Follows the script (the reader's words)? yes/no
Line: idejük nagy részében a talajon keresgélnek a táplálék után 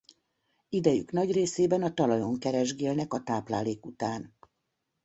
yes